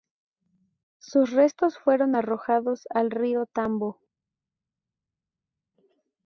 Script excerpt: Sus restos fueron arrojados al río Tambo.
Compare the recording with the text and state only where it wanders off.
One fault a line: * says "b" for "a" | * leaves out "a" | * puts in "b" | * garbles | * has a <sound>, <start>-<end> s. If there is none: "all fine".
all fine